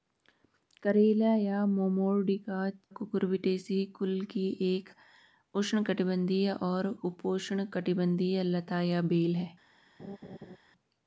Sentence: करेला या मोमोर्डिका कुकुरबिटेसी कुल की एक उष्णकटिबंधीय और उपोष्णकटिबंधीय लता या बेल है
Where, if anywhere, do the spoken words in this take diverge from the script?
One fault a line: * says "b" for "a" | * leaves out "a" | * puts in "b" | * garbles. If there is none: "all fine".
all fine